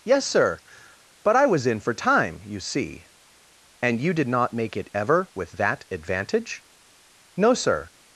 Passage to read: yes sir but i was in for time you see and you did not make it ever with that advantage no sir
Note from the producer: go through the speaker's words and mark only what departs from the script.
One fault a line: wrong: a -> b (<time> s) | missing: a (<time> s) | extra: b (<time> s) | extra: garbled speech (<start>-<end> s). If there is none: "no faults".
no faults